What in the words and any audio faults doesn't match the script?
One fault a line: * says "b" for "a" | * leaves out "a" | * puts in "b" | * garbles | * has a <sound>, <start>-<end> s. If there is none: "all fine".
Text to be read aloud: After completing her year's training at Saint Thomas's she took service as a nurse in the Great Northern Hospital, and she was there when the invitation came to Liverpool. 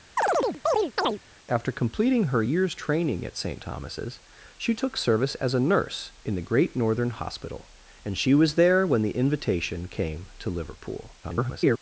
* has a chirp, 0.2-1.2 s
* garbles